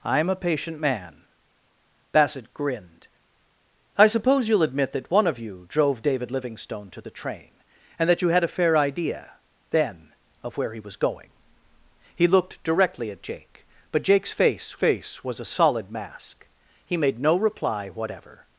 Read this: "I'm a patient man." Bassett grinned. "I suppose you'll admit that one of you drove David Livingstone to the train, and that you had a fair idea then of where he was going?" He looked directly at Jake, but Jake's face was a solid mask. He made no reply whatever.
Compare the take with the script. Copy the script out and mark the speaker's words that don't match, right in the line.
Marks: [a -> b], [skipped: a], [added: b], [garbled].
"I'm a patient man." Bassett grinned. "I suppose you'll admit that one of you drove David Livingstone to the train, and that you had a fair idea then of where he was going?" He looked directly at Jake, but Jake's face [added: face] was a solid mask. He made no reply whatever.